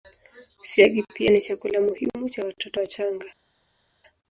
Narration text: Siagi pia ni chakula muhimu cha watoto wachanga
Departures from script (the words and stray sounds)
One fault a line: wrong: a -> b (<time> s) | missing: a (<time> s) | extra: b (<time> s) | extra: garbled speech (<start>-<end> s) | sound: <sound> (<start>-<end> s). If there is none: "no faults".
no faults